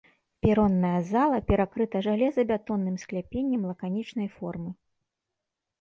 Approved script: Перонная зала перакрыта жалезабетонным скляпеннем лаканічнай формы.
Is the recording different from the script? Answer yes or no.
no